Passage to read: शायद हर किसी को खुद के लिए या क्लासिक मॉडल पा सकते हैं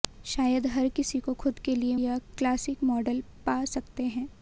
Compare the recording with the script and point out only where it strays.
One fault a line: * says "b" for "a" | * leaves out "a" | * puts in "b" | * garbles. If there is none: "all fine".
all fine